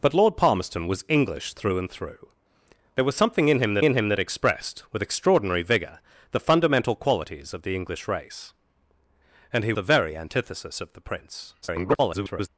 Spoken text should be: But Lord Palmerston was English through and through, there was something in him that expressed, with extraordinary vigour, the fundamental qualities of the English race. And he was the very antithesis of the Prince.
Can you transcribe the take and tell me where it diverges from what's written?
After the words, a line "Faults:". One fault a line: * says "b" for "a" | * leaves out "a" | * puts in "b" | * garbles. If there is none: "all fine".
But Lord Palmerston was English through and through, there was something in him that in him that expressed, with extraordinary vigour, the fundamental qualities of the English race. And he the very antithesis of the Prince. [garbled]
Faults:
* puts in "in him that"
* leaves out "was"
* garbles